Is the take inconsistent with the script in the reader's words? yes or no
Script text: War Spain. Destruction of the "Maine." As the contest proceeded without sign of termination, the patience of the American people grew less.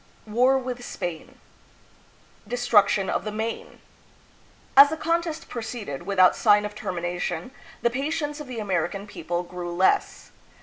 yes